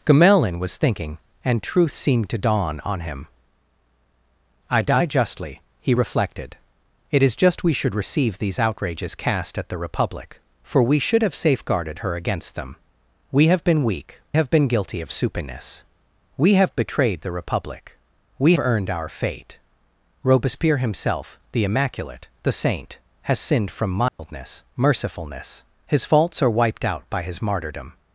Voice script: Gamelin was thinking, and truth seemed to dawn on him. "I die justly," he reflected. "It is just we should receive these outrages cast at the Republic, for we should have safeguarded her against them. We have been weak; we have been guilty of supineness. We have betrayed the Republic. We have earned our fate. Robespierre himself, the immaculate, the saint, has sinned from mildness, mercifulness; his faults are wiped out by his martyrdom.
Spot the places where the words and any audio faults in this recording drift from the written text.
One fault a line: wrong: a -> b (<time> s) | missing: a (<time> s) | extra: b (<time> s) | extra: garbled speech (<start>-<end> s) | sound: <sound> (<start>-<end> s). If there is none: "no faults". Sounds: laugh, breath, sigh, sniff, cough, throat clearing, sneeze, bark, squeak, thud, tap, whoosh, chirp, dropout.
missing: we (14.2 s)
missing: have (18.5 s)
sound: dropout (24.1-24.2 s)